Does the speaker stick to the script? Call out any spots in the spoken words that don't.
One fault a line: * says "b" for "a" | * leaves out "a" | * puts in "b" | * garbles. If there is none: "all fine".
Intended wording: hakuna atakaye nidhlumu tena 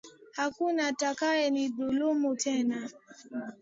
all fine